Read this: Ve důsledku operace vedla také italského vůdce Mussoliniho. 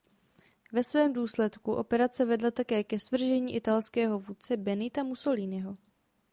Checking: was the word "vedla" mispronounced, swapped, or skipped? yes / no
no